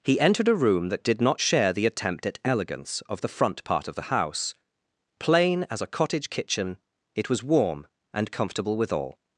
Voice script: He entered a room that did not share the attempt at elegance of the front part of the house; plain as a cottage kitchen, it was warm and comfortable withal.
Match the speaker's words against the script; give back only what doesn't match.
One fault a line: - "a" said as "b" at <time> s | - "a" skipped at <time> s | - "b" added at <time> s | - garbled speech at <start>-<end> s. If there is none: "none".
none